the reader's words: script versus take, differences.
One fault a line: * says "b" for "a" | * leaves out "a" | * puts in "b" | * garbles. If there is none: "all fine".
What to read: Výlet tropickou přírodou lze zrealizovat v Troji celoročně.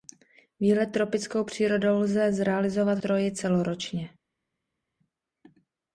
* leaves out "v"